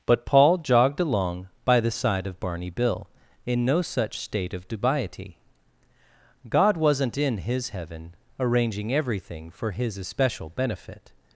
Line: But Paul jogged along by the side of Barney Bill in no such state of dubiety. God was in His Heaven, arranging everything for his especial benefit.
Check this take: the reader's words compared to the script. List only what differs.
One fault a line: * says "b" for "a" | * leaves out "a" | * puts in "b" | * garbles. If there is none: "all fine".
* says "wasn't" for "was"